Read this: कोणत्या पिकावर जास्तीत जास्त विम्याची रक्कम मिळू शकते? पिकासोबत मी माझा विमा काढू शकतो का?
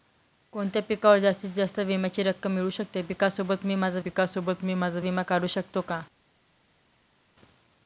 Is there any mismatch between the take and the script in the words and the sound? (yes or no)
yes